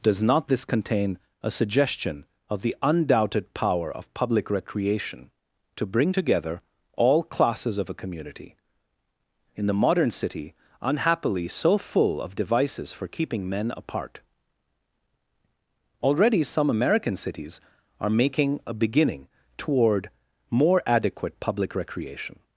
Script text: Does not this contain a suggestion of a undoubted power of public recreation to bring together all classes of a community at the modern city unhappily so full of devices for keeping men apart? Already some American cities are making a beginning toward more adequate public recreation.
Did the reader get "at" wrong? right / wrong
wrong